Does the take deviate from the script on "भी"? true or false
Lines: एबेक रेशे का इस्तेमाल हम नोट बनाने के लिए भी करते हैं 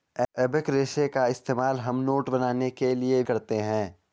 true